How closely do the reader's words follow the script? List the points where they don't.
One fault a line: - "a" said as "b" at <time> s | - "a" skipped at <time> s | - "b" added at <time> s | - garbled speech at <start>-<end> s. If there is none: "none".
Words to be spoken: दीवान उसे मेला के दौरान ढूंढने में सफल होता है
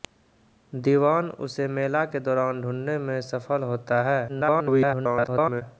- garbled speech at 4.3-5.6 s